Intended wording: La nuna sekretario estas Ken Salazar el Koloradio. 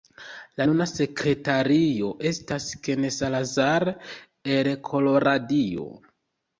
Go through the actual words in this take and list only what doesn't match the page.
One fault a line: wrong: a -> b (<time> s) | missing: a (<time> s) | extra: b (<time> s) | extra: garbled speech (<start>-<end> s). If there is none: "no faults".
no faults